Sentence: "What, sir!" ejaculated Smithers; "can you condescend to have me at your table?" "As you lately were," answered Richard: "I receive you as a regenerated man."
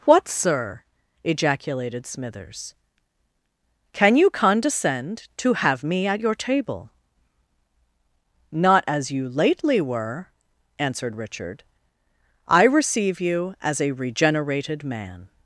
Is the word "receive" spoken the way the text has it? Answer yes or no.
yes